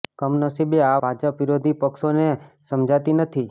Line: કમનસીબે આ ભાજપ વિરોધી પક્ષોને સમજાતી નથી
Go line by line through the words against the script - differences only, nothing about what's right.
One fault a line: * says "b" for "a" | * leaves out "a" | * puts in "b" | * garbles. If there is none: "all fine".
all fine